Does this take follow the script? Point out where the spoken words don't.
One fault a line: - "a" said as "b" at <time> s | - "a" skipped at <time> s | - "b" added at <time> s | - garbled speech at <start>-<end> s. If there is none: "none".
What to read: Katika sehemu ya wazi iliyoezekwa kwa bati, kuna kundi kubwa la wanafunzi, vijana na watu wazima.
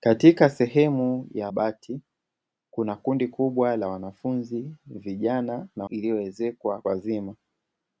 - "wazi iliyoezekwa kwa" skipped at 1.5 s
- "watu" said as "iliyoezekwa" at 5.9 s